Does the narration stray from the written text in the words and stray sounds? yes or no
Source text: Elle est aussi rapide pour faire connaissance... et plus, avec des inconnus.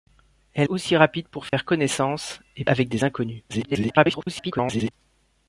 yes